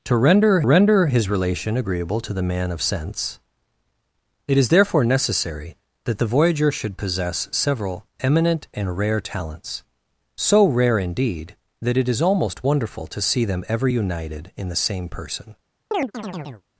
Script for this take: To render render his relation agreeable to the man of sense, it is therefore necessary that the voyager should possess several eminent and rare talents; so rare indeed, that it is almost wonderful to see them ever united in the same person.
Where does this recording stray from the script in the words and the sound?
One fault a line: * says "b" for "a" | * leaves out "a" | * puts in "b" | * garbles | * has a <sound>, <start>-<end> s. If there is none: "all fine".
* has a chirp, 15.9-16.6 s